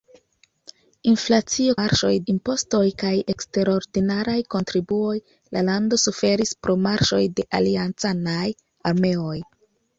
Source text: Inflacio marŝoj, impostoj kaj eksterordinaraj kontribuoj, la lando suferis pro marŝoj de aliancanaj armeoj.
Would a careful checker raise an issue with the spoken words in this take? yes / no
no